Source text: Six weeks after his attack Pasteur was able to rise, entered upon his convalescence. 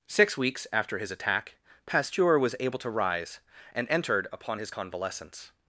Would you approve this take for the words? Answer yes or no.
no